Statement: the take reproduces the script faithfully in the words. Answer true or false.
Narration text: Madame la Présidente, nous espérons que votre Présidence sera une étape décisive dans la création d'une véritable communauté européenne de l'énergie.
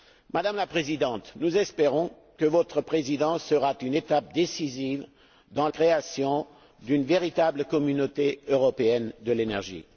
false